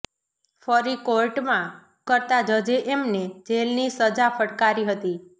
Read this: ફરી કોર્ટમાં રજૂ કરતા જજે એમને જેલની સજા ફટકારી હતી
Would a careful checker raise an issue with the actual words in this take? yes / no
yes